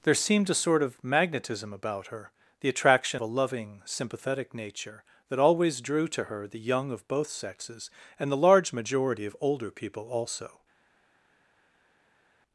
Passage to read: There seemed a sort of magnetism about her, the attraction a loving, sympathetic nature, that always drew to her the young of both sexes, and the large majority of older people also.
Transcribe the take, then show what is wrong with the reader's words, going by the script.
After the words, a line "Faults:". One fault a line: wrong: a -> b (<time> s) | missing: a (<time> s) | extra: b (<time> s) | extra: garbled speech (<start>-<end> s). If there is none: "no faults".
There seemed a sort of magnetism about her, the attraction a loving, sympathetic nature, that always drew to her the young of both sexes, and the large majority of older people also.
Faults:
no faults